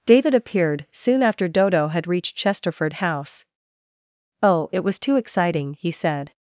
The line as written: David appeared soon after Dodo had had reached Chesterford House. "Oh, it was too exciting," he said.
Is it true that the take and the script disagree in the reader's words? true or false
true